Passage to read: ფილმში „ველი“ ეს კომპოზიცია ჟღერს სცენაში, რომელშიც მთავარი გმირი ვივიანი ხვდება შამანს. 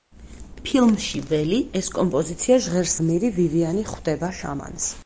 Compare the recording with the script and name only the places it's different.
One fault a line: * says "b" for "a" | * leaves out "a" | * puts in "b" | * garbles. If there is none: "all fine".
* leaves out "სცენაში რომელშიც მთავარი"